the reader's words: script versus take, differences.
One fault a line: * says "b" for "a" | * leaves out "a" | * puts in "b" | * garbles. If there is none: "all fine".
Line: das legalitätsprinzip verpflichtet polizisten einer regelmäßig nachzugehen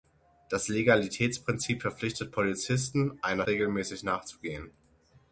all fine